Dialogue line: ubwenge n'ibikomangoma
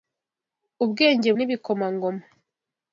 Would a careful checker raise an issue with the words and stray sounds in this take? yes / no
no